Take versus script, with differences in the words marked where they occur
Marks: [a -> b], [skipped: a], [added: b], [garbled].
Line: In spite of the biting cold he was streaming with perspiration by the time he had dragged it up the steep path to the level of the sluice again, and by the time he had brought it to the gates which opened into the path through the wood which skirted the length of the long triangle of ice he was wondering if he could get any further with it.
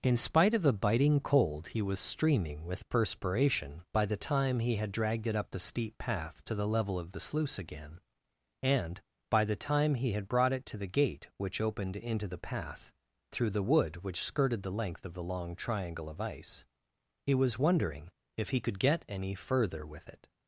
In spite of the biting cold he was streaming with perspiration by the time he had dragged it up the steep path to the level of the sluice again, and by the time he had brought it to the [gates -> gate] which opened into the path through the wood which skirted the length of the long triangle of ice he was wondering if he could get any further with it.